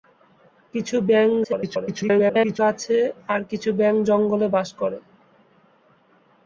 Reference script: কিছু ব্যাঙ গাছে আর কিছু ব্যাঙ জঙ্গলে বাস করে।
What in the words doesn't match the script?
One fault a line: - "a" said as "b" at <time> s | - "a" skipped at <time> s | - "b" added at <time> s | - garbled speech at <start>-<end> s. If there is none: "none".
- garbled speech at 1.4-2.6 s